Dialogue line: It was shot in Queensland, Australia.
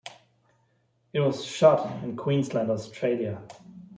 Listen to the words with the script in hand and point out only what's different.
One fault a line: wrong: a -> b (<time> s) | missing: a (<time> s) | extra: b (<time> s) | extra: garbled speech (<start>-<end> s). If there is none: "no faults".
no faults